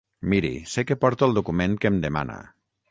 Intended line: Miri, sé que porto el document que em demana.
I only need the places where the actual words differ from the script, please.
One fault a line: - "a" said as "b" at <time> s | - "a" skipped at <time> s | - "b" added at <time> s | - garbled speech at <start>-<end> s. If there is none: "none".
none